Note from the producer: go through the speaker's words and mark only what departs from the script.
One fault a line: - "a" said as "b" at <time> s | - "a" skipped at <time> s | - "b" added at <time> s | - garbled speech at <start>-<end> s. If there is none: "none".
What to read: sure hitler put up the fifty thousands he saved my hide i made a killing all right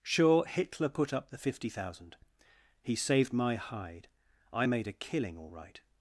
- "thousands" said as "thousand" at 1.7 s